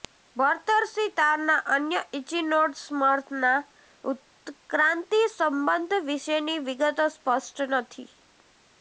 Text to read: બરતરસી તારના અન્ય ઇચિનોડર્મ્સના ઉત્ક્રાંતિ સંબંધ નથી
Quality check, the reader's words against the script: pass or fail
fail